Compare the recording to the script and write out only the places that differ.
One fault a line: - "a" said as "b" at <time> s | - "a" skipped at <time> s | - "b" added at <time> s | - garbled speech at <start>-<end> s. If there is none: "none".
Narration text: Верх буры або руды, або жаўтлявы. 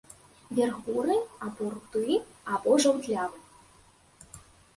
none